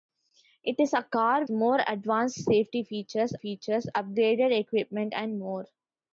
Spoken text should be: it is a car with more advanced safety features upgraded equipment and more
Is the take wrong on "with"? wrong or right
wrong